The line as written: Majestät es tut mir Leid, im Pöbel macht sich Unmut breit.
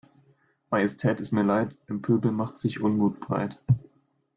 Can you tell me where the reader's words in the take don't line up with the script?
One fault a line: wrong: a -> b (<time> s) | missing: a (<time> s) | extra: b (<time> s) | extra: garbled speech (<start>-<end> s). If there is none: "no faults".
missing: tut (1.3 s)